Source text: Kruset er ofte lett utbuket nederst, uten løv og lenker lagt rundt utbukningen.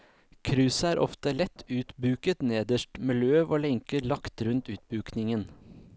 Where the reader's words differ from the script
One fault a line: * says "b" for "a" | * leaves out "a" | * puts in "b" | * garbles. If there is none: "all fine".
* says "med" for "uten"